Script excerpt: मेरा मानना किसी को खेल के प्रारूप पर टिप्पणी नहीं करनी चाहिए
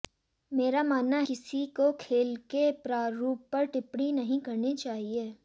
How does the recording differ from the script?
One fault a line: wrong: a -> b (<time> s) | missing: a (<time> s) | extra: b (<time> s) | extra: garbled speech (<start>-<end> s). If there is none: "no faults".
no faults